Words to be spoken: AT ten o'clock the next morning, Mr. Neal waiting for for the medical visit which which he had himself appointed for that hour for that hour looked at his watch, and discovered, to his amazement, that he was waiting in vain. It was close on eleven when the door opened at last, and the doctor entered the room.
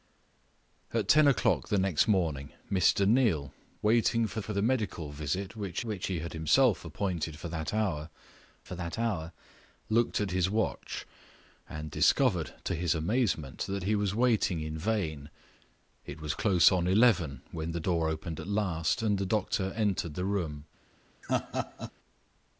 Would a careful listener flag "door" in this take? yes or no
no